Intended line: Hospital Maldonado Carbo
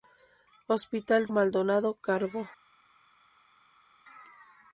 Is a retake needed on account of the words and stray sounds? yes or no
no